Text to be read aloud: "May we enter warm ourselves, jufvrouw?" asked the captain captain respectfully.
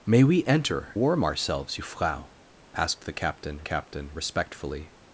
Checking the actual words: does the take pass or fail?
pass